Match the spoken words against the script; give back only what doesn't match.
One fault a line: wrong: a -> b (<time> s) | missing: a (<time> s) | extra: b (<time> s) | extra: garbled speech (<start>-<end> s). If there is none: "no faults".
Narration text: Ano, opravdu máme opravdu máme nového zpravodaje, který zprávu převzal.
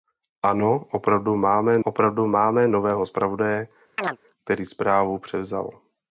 no faults